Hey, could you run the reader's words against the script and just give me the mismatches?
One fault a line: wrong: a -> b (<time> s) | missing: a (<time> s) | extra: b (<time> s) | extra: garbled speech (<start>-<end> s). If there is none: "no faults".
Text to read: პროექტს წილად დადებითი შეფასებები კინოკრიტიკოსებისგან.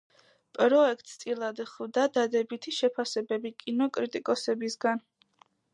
extra: ხვდა (1.7 s)